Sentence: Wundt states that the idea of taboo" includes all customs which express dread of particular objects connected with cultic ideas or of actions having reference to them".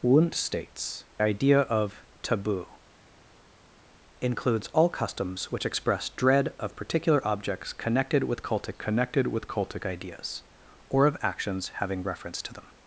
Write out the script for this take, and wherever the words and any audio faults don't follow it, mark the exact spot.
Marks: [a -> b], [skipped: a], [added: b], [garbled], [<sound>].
Wundt states [skipped: that the] idea of taboo" includes all customs which express dread of particular objects connected with cultic [added: connected with cultic] ideas or of actions having reference to them".